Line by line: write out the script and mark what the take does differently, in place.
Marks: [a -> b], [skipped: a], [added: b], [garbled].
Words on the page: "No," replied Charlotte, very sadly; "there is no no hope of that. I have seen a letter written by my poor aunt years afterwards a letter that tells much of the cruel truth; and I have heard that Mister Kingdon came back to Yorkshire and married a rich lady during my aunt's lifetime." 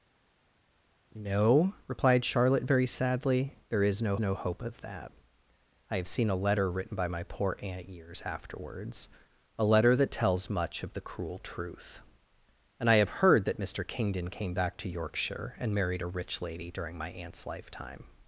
"No," replied Charlotte, very sadly; "there is no no hope of that. I have seen a letter written by my poor aunt years afterwards a letter that tells much of the cruel truth; and I have heard that Mister Kingdon came back to Yorkshire and married a rich lady during my aunt's lifetime."